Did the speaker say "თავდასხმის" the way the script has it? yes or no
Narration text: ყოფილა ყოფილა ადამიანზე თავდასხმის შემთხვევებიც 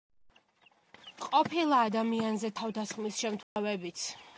yes